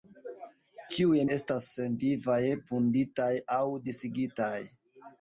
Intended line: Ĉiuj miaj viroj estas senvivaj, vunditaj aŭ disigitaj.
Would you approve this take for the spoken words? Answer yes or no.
no